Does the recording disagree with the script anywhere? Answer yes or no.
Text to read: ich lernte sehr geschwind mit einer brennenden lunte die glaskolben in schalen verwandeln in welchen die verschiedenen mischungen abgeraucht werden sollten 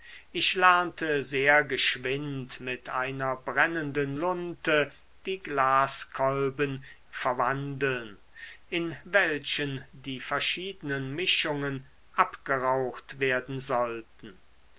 yes